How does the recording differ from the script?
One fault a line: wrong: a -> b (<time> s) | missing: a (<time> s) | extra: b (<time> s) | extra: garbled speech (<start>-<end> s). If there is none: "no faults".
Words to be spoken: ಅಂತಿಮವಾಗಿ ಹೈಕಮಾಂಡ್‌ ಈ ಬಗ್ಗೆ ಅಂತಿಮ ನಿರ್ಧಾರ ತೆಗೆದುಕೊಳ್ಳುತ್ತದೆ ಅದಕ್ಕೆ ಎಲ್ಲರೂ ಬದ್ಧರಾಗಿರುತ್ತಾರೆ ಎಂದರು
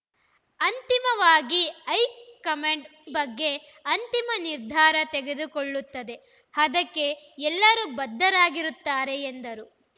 missing: ಈ (2.9 s)